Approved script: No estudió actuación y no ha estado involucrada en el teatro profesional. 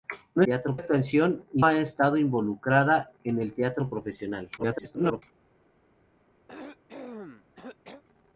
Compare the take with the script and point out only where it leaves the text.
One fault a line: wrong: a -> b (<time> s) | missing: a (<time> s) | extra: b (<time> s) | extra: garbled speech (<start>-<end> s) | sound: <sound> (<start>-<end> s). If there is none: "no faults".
wrong: estudió -> teatro (0.4 s)
missing: no (1.6 s)
extra: garbled speech (4.6-5.2 s)
sound: cough (6.5-8.0 s)